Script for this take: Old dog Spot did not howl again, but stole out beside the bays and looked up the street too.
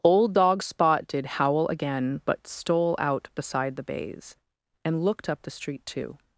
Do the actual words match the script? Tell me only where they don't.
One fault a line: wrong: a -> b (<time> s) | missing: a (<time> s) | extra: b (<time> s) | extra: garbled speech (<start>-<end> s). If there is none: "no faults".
missing: not (1.3 s)